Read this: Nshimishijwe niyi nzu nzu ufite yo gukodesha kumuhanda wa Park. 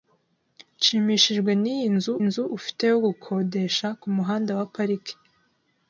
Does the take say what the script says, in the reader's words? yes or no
yes